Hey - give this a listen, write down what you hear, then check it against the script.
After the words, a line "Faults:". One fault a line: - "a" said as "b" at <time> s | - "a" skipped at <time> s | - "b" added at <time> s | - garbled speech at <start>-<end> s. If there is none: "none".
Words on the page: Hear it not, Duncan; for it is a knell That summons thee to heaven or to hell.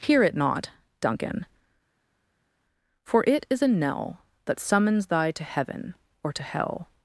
Hear it not, Duncan; for it is a knell That summons thy to heaven or to hell.
Faults:
- "thee" said as "thy" at 5.1 s